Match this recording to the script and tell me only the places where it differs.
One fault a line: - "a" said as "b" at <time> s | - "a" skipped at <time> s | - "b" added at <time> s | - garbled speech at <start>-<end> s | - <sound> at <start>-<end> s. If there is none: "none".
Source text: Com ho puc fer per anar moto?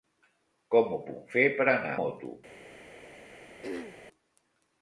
- throat clearing at 3.6-4.0 s